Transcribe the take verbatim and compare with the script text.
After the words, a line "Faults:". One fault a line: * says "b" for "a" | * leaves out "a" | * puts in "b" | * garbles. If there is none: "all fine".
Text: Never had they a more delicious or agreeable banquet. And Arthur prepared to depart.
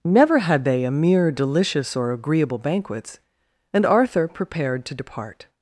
Never had they a mere delicious or agreeable banquets. And Arthur prepared to depart.
Faults:
* says "mere" for "more"
* says "banquets" for "banquet"